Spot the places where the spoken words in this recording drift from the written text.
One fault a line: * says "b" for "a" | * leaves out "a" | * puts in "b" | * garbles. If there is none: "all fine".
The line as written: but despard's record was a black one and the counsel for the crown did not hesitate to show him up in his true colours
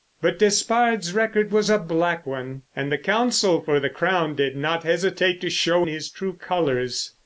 * leaves out "him up in"